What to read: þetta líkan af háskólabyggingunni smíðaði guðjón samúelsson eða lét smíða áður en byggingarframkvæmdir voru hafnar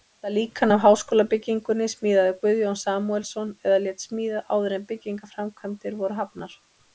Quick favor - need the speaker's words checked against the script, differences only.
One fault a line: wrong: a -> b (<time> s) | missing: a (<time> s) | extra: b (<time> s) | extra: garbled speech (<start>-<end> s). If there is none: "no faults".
no faults